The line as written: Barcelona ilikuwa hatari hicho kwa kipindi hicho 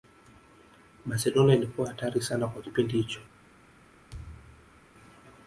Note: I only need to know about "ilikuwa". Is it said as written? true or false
true